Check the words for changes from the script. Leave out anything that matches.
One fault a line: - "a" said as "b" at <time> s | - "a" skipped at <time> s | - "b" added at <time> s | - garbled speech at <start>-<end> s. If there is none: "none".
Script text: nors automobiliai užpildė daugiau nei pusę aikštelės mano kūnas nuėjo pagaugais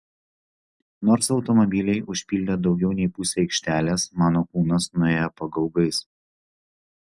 none